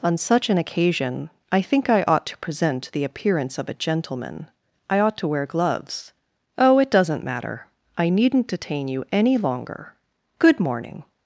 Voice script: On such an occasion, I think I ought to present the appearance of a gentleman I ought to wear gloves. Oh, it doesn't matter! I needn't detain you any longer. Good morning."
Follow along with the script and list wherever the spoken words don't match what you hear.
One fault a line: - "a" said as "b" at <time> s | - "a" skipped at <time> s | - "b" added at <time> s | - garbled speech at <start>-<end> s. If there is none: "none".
none